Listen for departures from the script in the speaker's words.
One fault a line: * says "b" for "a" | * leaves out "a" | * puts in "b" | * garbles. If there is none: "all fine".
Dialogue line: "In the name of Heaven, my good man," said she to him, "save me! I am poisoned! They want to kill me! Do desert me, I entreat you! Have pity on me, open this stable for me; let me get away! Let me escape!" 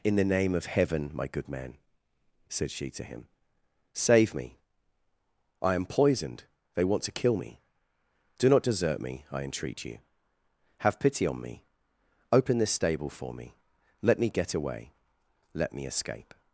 * puts in "not"